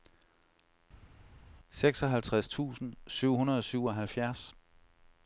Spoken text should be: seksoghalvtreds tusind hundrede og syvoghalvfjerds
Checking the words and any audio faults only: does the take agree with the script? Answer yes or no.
no